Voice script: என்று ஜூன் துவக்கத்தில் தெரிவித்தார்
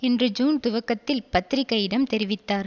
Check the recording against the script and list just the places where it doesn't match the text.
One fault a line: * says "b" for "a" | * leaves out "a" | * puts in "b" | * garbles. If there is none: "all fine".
* puts in "பத்திரிகையிடம்"